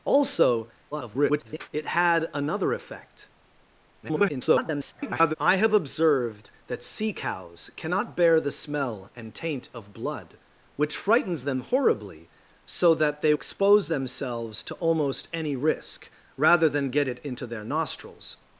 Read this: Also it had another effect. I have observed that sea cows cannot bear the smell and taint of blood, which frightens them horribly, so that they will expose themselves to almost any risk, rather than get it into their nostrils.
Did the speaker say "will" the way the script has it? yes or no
no